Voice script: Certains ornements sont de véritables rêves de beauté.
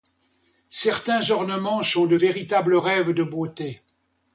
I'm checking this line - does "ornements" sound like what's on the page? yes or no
yes